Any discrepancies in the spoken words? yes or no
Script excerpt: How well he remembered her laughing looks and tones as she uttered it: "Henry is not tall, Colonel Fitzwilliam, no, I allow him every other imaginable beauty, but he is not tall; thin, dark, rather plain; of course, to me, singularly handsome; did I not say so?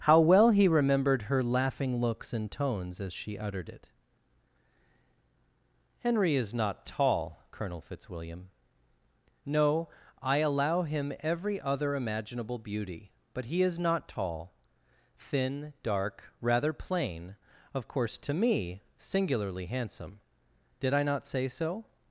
no